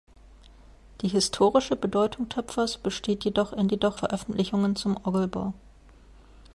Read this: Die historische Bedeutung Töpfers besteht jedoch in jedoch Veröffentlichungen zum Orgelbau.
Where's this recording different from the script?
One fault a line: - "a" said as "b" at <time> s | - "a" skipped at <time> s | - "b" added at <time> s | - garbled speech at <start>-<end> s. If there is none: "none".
none